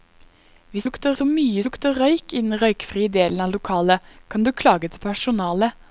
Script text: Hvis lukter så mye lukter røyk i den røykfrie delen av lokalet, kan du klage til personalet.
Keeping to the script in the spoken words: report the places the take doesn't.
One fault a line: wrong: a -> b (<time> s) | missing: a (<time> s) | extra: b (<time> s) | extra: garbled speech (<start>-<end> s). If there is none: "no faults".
no faults